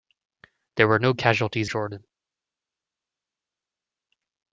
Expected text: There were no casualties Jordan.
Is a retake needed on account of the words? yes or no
no